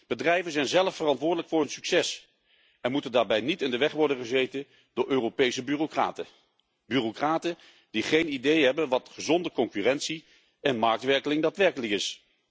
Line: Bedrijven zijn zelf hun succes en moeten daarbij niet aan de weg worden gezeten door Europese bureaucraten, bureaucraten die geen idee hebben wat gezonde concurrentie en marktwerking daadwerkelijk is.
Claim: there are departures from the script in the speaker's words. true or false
true